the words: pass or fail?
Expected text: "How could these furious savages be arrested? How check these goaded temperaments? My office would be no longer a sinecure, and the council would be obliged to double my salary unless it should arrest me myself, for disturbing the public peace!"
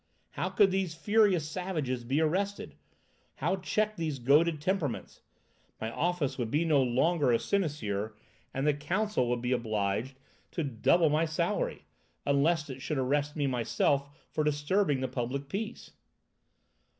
pass